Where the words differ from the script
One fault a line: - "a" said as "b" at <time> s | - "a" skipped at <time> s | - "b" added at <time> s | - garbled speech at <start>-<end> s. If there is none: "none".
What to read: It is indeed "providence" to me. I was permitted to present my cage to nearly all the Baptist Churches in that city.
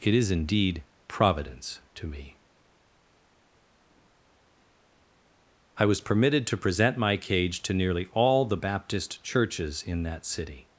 none